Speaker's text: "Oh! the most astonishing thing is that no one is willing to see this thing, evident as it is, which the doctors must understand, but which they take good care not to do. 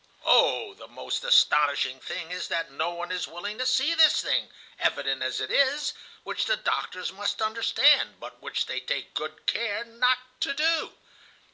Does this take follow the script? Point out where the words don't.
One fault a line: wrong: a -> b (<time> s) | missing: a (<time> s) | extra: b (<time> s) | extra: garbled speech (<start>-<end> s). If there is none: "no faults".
no faults